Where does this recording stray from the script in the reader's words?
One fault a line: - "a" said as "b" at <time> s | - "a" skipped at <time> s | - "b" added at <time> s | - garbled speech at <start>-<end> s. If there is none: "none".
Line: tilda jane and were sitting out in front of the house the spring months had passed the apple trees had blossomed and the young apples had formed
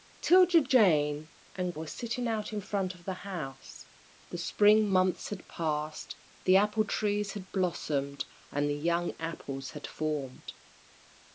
none